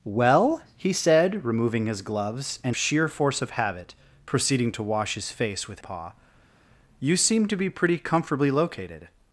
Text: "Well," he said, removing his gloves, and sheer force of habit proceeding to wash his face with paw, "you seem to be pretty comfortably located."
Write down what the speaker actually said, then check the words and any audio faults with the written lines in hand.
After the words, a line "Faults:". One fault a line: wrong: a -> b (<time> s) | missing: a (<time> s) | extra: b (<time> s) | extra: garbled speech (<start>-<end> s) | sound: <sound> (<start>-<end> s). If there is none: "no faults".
"Well," he said, removing his gloves, and sheer force of habit proceeding to wash his face with paw, "you seem to be pretty comfortably located."
Faults:
no faults